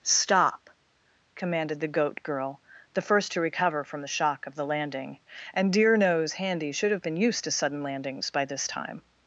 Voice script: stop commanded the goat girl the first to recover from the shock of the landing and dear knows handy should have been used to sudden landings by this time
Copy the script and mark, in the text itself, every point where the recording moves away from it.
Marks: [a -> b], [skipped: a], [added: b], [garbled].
stop commanded the goat girl the first to recover from the shock of the landing and dear knows handy should have been used to sudden landings by this time